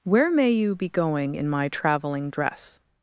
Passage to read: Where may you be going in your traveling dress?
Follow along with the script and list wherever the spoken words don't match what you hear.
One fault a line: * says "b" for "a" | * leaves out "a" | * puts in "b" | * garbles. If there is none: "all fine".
* says "my" for "your"